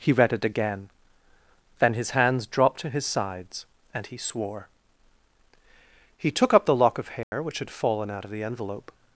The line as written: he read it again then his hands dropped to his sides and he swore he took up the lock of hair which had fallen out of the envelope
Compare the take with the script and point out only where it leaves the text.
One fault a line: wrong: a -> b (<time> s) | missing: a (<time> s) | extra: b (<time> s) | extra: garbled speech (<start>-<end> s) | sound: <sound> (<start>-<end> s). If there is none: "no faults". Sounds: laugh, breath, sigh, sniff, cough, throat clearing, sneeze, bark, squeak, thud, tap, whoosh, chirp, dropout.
sound: dropout (7.2-7.3 s)